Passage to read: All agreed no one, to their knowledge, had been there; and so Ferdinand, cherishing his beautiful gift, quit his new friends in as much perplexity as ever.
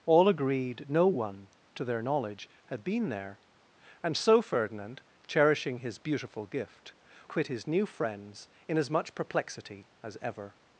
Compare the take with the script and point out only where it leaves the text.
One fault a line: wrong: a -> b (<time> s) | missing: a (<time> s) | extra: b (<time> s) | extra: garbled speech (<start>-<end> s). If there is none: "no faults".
no faults